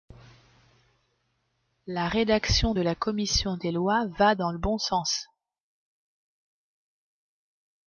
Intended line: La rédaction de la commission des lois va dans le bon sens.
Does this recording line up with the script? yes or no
yes